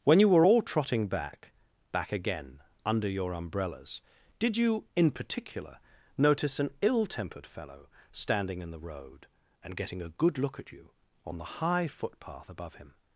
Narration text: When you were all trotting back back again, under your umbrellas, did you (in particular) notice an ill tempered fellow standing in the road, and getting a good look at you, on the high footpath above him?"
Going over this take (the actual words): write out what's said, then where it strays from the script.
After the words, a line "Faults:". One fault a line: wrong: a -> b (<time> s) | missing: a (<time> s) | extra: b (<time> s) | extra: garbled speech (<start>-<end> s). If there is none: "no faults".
When you were all trotting back back again, under your umbrellas, did you (in particular) notice an ill tempered fellow standing in the road, and getting a good look at you, on the high footpath above him?"
Faults:
no faults